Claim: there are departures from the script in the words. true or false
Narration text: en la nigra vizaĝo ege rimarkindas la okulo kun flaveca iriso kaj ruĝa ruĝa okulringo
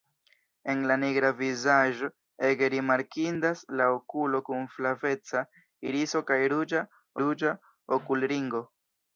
false